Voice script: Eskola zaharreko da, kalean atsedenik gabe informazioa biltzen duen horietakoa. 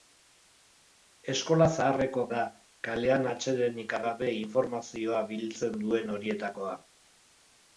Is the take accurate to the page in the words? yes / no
yes